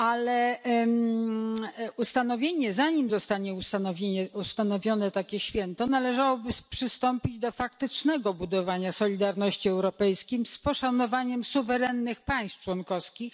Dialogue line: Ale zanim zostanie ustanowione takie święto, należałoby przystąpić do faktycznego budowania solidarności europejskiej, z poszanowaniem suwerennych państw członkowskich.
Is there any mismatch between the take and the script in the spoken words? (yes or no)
no